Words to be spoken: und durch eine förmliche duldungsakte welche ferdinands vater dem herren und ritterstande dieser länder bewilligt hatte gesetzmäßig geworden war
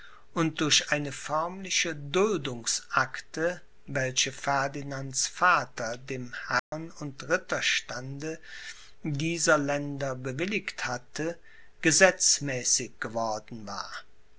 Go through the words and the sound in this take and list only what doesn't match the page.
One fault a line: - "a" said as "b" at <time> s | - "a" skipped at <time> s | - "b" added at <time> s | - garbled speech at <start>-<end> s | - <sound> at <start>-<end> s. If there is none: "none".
- dropout at 6.6-6.7 s